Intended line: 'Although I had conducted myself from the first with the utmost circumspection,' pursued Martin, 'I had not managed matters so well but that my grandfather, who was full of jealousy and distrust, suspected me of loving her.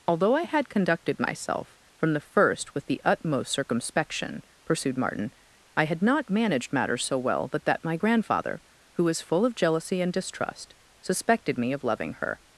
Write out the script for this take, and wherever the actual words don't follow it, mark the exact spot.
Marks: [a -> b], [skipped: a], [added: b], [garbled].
'Although I had conducted myself from the first with the utmost circumspection,' pursued Martin, 'I had not managed matters so well but that my grandfather, who was full of jealousy and distrust, suspected me of loving her.